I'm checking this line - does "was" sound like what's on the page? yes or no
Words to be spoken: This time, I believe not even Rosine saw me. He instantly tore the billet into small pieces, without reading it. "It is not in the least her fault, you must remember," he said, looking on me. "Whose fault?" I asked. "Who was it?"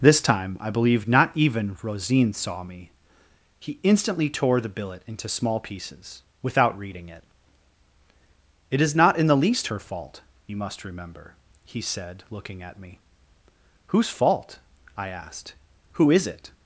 no